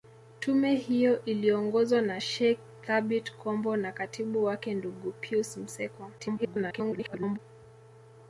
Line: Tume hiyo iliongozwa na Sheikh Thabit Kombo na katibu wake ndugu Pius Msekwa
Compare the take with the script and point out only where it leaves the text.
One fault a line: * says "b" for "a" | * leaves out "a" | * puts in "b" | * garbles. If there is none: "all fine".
* garbles